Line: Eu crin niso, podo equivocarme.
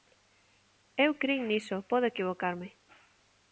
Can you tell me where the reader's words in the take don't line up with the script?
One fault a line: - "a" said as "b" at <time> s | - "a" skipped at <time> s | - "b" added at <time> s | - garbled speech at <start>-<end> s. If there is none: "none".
none